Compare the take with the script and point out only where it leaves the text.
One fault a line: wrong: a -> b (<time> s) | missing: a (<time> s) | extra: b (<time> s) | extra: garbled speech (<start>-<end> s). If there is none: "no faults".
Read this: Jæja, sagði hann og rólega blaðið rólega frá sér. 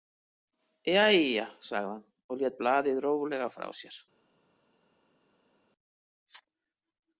wrong: rólega -> lét (2.4 s)